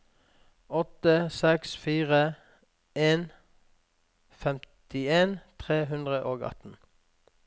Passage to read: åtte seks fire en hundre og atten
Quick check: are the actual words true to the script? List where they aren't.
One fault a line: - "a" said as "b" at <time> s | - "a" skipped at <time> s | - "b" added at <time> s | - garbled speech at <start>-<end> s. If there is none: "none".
- "femtien tre" added at 4.5 s